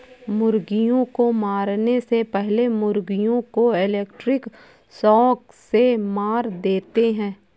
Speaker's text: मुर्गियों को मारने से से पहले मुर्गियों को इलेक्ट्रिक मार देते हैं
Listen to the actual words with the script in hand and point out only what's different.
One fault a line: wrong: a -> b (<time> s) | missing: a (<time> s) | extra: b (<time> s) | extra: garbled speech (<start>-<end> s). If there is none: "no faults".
missing: से (2.2 s)
extra: शॉक से (5.0 s)